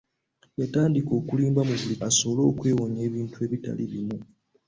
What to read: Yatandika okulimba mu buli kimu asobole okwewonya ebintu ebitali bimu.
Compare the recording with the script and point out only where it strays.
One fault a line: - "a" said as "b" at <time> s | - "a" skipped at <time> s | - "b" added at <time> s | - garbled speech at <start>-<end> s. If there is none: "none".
- "kimu" skipped at 1.9 s